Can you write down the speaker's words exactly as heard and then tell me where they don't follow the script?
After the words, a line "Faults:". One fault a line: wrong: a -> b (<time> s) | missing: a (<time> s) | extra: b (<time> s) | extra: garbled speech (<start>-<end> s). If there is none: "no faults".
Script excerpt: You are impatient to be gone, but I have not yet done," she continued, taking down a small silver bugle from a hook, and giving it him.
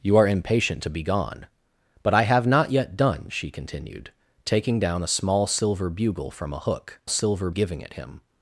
You are impatient to be gone, but I have not yet done," she continued, taking down a small silver bugle from a hook, silver giving it him.
Faults:
wrong: and -> silver (7.1 s)